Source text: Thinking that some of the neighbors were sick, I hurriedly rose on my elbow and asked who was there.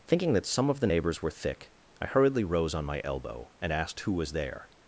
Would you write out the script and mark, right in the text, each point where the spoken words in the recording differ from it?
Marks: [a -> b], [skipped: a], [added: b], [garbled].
Thinking that some of the neighbors were [sick, -> thick] I hurriedly rose on my elbow and asked who was there.